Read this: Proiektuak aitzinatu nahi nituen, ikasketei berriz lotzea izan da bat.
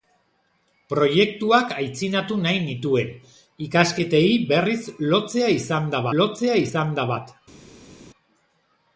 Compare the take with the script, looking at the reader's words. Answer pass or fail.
fail